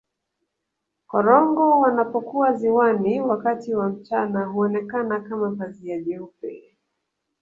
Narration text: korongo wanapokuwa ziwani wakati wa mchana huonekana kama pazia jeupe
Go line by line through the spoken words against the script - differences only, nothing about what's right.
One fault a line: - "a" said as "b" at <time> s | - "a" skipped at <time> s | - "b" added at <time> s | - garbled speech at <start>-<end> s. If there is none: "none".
none